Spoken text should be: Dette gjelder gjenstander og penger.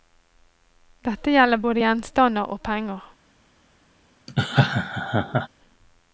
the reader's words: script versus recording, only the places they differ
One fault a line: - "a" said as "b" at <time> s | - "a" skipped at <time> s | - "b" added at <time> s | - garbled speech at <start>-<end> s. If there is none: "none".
- "både" added at 1.6 s